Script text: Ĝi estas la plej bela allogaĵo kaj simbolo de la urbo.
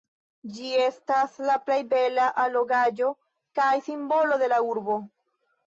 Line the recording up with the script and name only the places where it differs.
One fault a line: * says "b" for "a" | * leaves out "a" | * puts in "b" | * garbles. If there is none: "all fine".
all fine